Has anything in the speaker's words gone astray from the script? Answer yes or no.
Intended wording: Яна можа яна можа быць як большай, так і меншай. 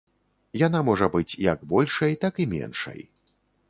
yes